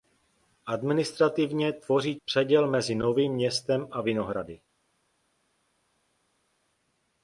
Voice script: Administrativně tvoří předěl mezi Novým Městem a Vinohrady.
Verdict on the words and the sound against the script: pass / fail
pass